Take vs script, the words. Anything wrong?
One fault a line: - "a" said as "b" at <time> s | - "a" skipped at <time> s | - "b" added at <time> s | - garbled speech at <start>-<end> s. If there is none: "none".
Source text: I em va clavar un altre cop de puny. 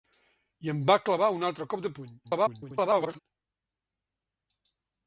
- garbled speech at 2.2-3.2 s